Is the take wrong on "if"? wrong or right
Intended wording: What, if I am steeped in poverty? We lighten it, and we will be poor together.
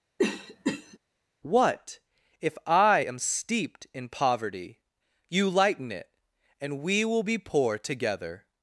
right